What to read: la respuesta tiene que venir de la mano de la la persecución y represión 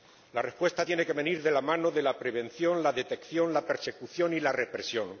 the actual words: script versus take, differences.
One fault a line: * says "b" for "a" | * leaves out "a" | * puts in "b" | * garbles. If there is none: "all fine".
* puts in "prevención"
* puts in "detección la"
* puts in "la"